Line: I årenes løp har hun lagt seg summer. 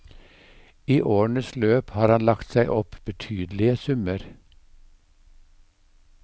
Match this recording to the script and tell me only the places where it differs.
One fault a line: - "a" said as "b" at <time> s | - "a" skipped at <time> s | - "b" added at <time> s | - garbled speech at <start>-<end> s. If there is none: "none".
- "hun" said as "han" at 2.1 s
- "opp betydelige" added at 2.8 s